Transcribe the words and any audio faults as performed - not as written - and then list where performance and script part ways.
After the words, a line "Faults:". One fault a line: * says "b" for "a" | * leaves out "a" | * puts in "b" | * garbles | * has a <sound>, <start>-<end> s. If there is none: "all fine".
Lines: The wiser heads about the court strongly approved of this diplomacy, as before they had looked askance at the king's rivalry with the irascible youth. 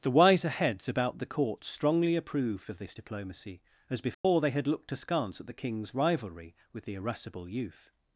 The wiser heads about the court strongly approved of this diplomacy, as before they had looked askance at the king's rivalry with the irascible youth.
Faults:
* has a dropout, 4.1-4.2 s